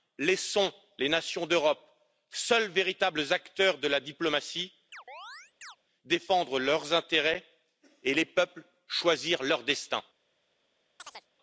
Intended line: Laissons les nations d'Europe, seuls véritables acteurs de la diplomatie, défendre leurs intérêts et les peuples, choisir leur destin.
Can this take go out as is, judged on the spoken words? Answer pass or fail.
pass